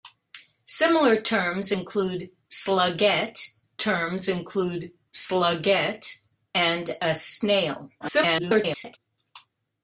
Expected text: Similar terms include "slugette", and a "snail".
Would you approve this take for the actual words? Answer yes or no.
no